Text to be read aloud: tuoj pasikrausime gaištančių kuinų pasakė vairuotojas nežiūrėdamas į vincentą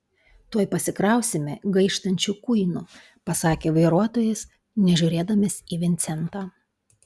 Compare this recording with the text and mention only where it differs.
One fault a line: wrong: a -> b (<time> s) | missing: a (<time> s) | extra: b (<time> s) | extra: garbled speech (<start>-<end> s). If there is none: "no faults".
no faults